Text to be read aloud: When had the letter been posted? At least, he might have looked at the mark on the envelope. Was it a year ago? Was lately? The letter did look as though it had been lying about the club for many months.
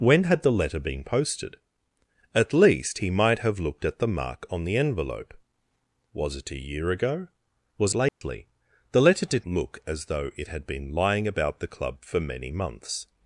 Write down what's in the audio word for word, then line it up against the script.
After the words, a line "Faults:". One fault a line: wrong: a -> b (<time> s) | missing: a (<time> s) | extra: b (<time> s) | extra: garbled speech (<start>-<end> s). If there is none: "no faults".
When had the letter been posted? At least, he might have looked at the mark on the envelope. Was it a year ago? Was lately? The letter did look as though it had been lying about the club for many months.
Faults:
no faults